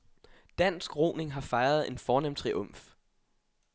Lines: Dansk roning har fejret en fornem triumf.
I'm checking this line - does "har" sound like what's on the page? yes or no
yes